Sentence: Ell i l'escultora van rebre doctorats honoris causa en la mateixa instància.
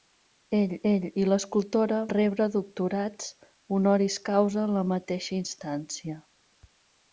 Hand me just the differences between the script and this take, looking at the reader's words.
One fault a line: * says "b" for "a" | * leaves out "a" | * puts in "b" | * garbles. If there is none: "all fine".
* puts in "ell"
* leaves out "van"